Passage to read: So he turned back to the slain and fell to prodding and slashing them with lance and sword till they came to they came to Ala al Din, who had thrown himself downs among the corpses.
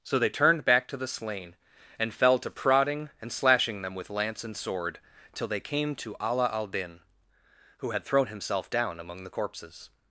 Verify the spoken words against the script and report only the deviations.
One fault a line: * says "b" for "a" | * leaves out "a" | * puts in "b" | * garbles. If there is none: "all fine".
* says "they" for "he"
* leaves out "they came to"
* says "down" for "downs"